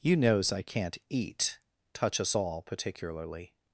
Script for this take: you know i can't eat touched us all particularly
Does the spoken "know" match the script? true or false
false